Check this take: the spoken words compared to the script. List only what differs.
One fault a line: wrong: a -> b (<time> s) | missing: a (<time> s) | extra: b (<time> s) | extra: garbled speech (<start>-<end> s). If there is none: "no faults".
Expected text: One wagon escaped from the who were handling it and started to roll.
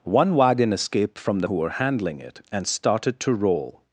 no faults